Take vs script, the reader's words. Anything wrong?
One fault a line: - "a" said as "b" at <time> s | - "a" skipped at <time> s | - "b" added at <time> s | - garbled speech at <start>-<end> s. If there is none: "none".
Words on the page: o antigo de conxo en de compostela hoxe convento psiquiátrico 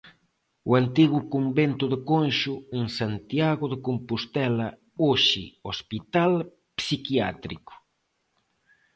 - "convento" added at 1.3 s
- "santiago" added at 3.0 s
- "convento" said as "hospital" at 5.7 s